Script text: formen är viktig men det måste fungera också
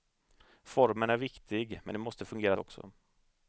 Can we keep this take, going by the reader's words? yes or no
yes